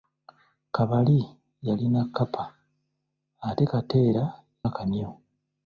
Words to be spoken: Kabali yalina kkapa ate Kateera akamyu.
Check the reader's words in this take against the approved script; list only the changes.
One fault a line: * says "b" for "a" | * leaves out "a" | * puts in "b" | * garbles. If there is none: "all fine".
all fine